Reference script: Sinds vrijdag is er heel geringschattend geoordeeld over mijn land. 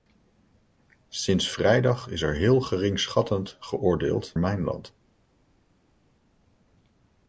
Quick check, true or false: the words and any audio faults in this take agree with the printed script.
false